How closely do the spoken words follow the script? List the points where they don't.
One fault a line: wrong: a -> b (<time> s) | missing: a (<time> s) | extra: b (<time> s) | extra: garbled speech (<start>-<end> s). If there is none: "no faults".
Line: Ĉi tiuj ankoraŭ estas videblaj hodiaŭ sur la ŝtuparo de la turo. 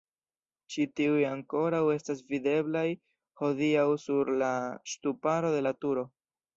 no faults